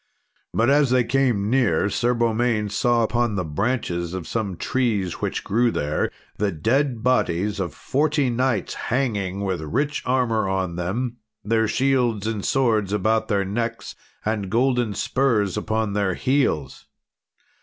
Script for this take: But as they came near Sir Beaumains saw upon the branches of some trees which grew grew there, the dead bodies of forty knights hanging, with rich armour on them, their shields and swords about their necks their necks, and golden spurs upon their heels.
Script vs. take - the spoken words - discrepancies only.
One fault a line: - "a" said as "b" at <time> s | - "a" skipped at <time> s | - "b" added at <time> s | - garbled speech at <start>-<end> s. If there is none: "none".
- "grew" skipped at 5.7 s
- "their necks" skipped at 13.9 s